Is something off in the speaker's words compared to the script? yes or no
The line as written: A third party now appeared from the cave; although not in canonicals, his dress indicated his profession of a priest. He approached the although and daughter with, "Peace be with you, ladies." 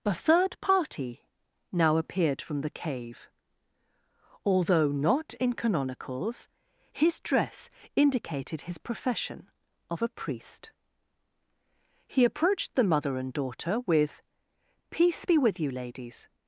yes